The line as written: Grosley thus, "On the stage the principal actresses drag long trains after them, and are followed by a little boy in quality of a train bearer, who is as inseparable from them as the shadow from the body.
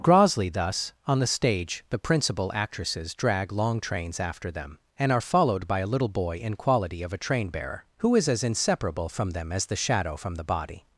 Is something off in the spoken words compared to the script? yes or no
no